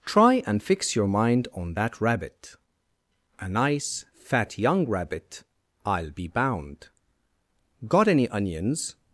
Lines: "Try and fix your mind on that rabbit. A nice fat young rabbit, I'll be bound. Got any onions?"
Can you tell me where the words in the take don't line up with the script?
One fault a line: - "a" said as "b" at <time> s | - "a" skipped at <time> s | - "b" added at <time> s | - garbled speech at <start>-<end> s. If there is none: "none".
none